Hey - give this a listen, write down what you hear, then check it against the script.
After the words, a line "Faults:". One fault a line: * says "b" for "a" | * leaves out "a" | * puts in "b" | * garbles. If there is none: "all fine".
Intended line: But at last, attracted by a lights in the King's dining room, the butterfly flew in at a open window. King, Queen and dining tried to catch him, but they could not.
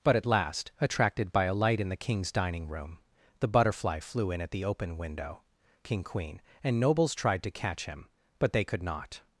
But at last, attracted by a light in the King's dining room, the butterfly flew in at the open window. King, Queen and nobles tried to catch him, but they could not.
Faults:
* says "light" for "lights"
* says "the" for "a"
* says "nobles" for "dining"